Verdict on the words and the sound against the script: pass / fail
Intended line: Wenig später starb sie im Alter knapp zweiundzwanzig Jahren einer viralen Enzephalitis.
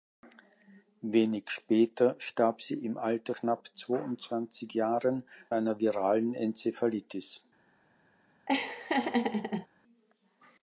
fail